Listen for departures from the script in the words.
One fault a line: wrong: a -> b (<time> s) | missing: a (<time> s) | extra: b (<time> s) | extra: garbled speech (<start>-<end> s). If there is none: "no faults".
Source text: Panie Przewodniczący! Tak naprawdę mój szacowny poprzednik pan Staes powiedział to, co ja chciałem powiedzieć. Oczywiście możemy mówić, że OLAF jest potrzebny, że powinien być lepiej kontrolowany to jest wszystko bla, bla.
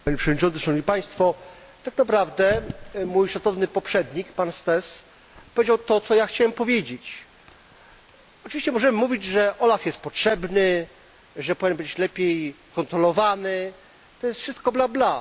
no faults